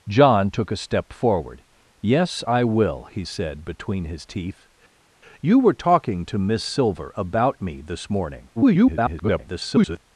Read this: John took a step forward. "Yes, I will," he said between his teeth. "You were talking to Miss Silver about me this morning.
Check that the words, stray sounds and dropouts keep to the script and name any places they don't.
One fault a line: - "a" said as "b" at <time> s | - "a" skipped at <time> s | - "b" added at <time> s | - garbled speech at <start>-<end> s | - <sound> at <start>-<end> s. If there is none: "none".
- garbled speech at 8.6-10.0 s